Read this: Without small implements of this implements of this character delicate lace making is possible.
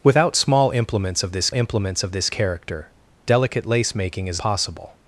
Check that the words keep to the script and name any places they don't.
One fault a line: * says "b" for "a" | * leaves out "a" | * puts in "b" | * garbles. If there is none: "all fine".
all fine